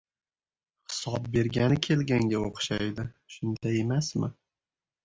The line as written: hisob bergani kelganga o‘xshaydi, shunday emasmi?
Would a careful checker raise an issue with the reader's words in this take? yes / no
no